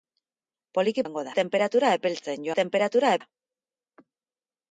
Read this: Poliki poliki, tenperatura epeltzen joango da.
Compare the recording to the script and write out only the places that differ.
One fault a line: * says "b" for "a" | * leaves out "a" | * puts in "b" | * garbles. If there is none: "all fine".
* says "joango" for "poliki"
* says "tenperatura" for "joango"